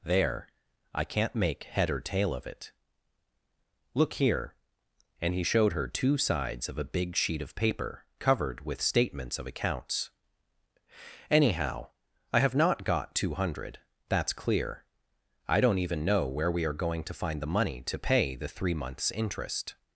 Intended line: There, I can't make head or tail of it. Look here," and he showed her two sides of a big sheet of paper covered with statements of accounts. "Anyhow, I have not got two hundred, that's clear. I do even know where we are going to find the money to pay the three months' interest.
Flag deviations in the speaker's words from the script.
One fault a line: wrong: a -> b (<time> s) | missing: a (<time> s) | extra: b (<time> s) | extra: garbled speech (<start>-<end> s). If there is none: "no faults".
wrong: do -> don't (15.6 s)